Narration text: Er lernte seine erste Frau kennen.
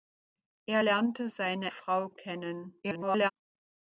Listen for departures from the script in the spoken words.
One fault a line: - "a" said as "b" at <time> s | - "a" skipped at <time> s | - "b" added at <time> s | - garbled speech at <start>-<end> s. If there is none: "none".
- "erste" skipped at 1.7 s
- garbled speech at 2.8-3.3 s